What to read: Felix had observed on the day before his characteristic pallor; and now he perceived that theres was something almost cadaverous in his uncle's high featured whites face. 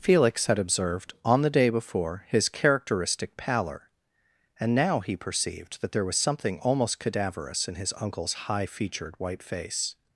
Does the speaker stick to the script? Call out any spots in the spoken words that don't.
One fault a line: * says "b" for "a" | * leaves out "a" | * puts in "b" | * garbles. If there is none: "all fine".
* says "there" for "theres"
* says "white" for "whites"